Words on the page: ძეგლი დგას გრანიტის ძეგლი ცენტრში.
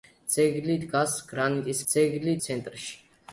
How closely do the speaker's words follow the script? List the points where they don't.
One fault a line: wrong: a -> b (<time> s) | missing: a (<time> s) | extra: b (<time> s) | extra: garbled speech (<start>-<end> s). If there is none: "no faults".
no faults